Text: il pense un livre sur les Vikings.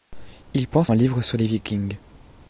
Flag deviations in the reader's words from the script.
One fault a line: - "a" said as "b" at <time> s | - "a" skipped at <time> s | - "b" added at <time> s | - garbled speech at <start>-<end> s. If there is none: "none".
none